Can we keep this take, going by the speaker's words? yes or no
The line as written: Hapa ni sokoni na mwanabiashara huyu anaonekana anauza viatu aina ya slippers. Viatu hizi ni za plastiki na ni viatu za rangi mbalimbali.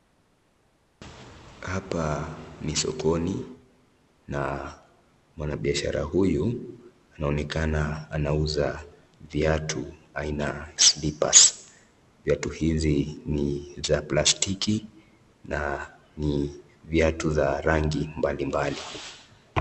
no